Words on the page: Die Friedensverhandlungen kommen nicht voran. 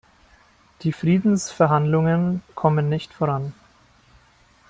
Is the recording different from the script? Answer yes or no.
no